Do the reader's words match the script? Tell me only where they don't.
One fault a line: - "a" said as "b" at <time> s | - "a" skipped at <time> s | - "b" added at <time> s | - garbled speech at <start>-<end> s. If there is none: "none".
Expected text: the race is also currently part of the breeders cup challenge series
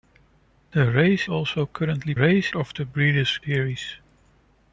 - "is" skipped at 1.3 s
- "part" said as "race" at 2.1 s
- "cup challenge" skipped at 3.4 s